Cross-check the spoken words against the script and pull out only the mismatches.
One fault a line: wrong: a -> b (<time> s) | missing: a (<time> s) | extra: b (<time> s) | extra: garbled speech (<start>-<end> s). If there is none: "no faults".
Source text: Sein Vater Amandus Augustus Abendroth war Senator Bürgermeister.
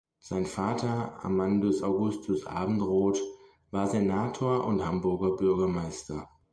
extra: und Hamburger (4.7 s)